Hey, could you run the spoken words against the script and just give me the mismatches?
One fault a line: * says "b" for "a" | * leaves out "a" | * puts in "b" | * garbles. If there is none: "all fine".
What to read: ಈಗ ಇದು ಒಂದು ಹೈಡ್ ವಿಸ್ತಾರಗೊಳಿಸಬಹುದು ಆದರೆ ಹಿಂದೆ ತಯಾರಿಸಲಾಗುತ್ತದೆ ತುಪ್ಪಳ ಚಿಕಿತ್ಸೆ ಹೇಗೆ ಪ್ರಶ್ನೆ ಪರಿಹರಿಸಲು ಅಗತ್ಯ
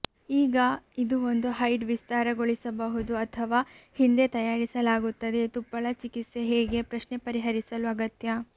* says "ಅಥವಾ" for "ಆದರೆ"